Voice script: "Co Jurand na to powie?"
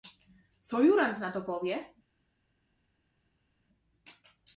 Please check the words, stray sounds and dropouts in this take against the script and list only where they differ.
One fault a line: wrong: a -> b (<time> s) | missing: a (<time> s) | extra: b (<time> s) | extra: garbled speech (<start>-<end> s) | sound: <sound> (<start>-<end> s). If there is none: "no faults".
no faults